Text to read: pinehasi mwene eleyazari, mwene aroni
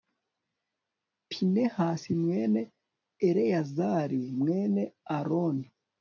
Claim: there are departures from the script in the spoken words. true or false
false